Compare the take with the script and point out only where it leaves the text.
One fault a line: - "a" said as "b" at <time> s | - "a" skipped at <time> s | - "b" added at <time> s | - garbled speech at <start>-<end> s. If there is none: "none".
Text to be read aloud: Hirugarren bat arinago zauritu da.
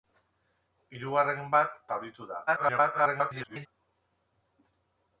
- "arinago" skipped at 1.8 s
- garbled speech at 2.5-3.7 s